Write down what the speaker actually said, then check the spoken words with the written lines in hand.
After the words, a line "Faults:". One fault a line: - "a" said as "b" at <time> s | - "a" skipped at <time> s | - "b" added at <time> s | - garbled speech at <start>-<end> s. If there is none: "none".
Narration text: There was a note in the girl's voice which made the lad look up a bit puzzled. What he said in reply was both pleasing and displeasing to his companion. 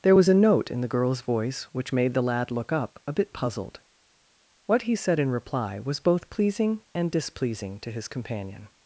There was a note in the girl's voice which made the lad look up a bit puzzled. What he said in reply was both pleasing and displeasing to his companion.
Faults:
none